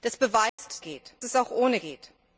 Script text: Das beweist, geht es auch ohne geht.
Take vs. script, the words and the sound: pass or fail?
fail